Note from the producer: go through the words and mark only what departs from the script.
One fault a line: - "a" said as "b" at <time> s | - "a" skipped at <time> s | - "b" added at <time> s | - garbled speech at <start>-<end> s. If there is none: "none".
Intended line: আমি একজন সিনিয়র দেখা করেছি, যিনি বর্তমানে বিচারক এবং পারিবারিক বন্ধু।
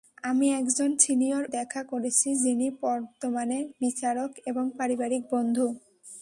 none